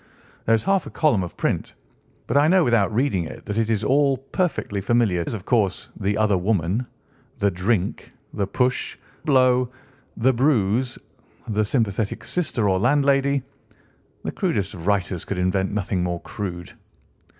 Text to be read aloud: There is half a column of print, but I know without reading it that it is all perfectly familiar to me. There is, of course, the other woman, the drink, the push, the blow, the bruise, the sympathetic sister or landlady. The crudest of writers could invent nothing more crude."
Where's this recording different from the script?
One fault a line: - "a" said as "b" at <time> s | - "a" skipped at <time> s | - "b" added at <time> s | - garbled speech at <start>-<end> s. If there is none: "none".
- "to me There" skipped at 5.2 s
- "the" skipped at 9.0 s